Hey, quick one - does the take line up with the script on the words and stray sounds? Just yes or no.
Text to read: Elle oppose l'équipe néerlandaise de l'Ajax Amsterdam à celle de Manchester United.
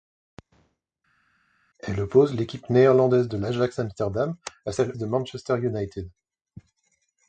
yes